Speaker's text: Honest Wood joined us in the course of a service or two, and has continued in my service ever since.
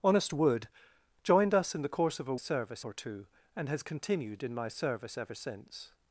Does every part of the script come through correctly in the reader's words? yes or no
yes